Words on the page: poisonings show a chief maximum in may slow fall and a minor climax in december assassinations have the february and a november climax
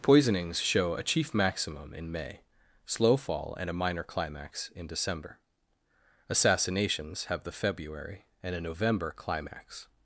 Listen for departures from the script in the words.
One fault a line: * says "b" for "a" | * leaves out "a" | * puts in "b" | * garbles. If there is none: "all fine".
all fine